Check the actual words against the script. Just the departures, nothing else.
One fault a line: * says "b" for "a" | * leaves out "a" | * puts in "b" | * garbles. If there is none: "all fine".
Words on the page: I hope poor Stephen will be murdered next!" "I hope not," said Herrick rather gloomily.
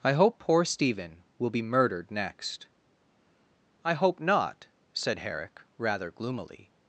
all fine